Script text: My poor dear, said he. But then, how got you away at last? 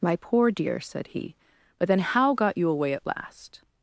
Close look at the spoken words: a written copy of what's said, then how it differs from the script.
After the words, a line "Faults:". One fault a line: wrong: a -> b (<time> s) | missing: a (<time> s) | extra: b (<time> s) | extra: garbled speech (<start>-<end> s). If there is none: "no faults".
My poor dear, said he. But then, how got you away at last?
Faults:
no faults